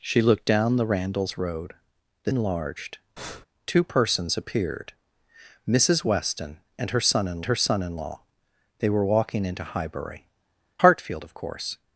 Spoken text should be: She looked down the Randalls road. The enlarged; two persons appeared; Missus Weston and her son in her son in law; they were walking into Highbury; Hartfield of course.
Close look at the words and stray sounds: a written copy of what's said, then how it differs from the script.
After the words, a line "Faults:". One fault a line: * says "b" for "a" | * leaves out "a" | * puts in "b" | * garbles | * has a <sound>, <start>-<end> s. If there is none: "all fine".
She looked down the Randalls road. The enlarged; two persons appeared; Missus Weston and her son in her son in law; they were walking into Highbury; Hartfield of course.
Faults:
* has a breath, 3.2-3.5 s